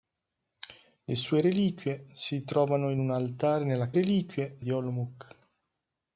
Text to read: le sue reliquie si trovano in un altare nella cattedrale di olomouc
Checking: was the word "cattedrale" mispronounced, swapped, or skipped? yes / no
yes